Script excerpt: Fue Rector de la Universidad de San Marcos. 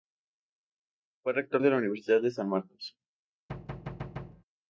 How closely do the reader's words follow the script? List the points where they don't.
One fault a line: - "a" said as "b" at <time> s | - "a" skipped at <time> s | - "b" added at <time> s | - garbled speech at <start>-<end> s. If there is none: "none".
none